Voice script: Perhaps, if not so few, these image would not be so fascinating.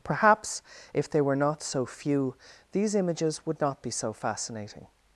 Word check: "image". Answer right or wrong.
wrong